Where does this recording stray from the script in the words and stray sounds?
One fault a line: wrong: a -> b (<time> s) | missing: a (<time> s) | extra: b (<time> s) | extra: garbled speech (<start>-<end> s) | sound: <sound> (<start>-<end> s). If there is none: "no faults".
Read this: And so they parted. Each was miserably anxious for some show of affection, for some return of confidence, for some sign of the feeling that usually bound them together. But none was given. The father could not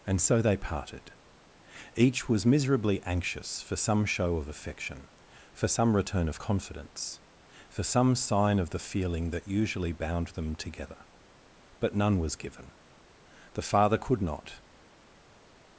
no faults